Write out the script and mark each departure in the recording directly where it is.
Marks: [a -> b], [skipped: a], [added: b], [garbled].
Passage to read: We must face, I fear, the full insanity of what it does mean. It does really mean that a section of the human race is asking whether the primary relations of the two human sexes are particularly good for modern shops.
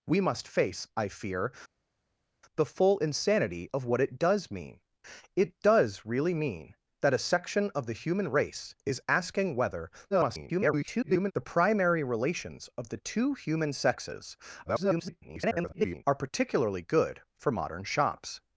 We must face, I fear, the full insanity of what it does mean. It does really mean that a section of the human race is asking whether [garbled] the primary relations of the two human sexes [garbled] are particularly good for modern shops.